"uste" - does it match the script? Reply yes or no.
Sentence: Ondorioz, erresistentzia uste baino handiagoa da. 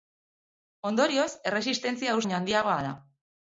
no